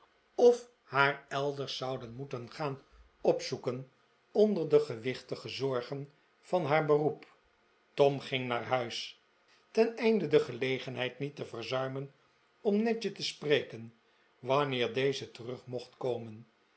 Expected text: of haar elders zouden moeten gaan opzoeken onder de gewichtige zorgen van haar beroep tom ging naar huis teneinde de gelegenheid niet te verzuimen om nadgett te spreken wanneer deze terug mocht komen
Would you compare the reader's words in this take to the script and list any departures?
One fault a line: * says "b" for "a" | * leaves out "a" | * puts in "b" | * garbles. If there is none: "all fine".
all fine